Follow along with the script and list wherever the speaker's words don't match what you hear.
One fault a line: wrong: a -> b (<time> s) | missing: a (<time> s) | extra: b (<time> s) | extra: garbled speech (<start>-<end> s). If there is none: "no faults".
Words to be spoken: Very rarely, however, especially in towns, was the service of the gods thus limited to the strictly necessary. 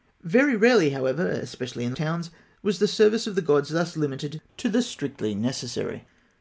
no faults